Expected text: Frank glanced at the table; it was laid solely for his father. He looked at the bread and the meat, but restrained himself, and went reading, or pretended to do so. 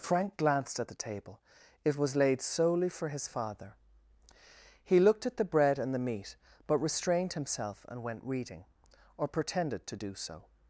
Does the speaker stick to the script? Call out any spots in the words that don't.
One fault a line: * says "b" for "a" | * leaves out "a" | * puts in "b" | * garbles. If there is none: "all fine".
all fine